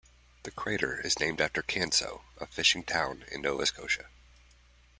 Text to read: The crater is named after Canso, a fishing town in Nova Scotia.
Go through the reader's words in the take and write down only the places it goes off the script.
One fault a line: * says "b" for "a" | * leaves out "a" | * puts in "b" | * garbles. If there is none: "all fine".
all fine